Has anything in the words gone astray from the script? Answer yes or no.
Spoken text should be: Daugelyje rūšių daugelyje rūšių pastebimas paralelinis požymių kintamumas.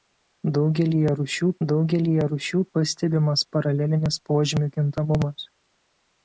no